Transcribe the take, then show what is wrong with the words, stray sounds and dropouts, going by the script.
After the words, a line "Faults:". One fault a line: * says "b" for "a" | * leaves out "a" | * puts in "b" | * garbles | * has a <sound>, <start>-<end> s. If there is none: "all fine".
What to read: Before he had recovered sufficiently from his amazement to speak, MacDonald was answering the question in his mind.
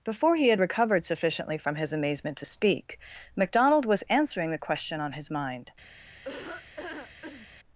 Before he had recovered sufficiently from his amazement to speak, MacDonald was answering the question on his mind.
Faults:
* says "on" for "in"
* has a laugh, 6.2-7.5 s